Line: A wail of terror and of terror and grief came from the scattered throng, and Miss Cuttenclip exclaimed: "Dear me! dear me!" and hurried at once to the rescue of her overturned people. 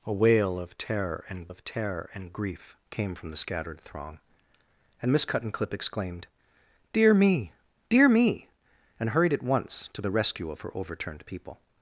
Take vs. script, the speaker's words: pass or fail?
pass